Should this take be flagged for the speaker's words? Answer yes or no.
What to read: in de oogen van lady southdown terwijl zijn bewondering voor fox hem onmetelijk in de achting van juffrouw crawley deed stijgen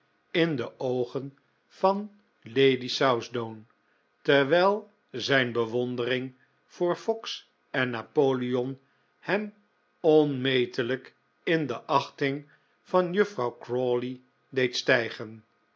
yes